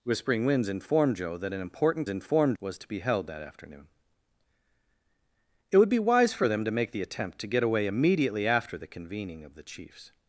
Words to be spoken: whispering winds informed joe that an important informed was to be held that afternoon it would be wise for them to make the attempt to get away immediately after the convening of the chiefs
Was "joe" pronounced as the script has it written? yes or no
yes